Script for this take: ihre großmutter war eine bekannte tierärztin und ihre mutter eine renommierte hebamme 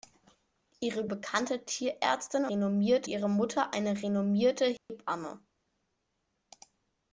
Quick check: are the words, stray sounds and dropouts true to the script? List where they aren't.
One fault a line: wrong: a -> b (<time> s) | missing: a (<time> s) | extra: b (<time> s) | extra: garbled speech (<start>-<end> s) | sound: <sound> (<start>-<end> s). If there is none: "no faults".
missing: großmutter war eine (1.1 s)
wrong: und -> renommierte (2.5 s)
sound: dropout (4.8-4.9 s)